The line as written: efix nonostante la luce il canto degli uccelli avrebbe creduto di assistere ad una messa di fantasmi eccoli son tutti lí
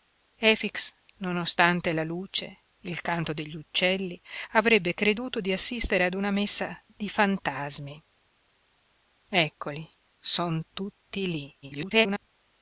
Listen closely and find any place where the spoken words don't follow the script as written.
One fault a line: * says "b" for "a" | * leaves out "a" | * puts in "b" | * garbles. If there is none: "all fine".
* garbles